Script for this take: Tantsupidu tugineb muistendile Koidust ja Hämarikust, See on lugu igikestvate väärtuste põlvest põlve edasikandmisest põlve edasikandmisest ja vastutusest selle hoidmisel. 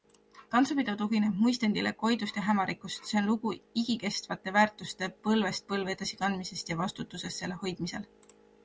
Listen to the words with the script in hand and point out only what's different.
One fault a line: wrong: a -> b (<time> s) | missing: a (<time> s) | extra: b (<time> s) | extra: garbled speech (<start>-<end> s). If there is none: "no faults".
missing: põlve edasikandmisest (6.7 s)